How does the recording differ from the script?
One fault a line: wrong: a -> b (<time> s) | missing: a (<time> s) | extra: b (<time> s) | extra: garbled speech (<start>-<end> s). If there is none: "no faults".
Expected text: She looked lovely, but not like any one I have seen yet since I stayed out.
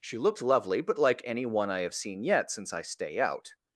missing: not (1.0 s)
wrong: stayed -> stay (2.8 s)